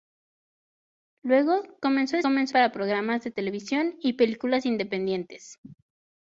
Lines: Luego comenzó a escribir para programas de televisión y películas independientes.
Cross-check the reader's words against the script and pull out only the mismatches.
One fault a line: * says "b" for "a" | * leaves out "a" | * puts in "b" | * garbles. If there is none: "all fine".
* says "comenzó" for "escribir"